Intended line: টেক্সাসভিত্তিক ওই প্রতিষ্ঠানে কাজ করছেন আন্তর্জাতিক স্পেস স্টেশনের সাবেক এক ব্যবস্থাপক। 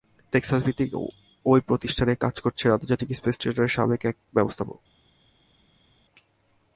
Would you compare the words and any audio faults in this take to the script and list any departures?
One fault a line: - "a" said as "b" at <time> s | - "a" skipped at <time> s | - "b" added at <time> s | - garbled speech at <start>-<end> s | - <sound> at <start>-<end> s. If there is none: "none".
none